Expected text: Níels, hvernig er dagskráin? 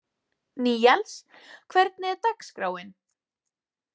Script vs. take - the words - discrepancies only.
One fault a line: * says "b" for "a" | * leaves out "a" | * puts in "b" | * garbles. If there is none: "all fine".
all fine